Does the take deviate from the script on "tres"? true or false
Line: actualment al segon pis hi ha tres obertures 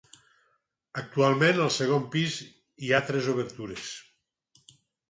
false